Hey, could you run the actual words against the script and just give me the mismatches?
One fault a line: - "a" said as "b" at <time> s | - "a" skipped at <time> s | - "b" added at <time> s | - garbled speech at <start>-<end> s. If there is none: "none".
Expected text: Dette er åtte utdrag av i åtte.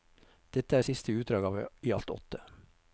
- "åtte" said as "siste" at 0.9 s
- "alt" added at 1.9 s